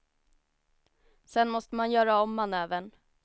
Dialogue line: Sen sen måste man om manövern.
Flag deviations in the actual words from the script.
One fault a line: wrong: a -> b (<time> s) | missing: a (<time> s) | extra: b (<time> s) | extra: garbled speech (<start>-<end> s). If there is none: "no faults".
missing: sen (1.5 s)
extra: göra (1.9 s)